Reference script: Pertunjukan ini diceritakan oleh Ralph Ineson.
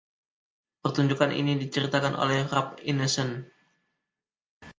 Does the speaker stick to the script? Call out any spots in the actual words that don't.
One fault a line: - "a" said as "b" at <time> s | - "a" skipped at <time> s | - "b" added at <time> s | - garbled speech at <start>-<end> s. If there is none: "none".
none